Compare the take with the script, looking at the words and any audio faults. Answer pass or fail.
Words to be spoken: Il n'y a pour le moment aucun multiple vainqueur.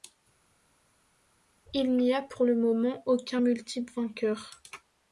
pass